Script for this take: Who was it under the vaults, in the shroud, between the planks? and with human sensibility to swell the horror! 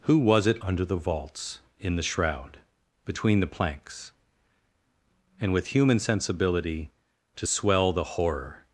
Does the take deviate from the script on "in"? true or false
false